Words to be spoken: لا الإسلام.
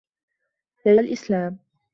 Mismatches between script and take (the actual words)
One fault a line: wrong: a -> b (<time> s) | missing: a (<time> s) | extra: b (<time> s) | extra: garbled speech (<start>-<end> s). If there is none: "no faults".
no faults